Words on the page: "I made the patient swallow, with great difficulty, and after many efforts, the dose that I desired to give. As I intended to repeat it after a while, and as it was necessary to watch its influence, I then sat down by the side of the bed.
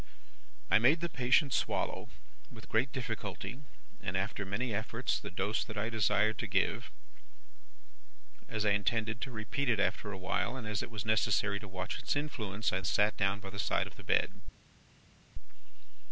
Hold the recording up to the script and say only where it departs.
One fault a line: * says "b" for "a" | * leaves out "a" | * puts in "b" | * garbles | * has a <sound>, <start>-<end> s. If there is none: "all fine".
* leaves out "then"